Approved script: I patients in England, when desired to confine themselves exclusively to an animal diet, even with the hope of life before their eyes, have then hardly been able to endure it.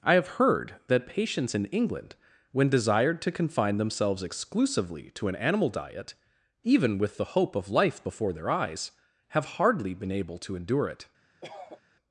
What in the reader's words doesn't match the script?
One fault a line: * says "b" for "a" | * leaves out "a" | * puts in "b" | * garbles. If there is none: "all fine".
* puts in "have heard that"
* leaves out "then"